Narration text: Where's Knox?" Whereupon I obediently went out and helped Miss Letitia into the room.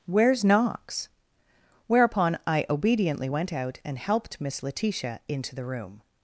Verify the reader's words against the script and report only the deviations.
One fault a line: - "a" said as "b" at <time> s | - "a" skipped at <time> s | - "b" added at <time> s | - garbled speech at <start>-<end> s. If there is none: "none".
none